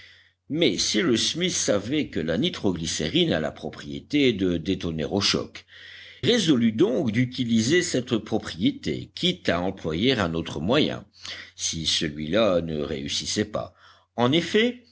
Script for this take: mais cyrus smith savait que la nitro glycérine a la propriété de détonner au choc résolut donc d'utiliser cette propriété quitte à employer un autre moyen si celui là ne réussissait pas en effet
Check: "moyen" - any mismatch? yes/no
no